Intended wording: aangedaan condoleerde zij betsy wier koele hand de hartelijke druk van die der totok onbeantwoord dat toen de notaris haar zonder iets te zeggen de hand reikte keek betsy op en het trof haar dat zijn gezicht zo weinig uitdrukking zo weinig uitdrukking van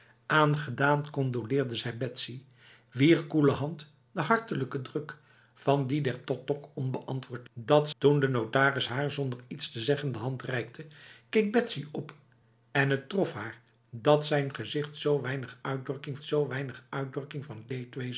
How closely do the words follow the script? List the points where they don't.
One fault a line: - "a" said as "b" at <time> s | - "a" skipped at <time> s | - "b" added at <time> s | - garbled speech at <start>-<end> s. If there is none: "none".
none